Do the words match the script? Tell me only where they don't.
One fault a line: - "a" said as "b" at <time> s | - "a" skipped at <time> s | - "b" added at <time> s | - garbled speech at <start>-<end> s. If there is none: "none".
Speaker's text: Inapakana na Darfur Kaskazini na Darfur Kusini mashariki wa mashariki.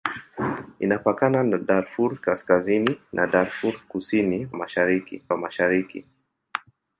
none